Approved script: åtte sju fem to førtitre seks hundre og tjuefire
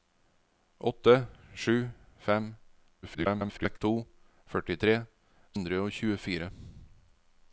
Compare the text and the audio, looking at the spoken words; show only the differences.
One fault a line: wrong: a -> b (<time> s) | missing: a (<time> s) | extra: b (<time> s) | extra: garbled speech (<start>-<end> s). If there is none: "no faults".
extra: garbled speech (3.0-3.8 s)
missing: seks (5.0 s)